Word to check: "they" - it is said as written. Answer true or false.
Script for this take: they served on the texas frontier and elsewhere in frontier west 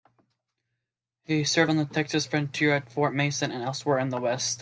false